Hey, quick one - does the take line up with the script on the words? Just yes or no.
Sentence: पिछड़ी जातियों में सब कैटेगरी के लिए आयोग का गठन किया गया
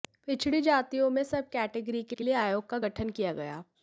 no